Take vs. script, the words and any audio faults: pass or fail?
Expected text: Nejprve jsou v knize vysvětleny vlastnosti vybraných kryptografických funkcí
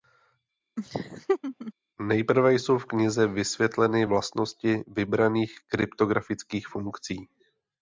fail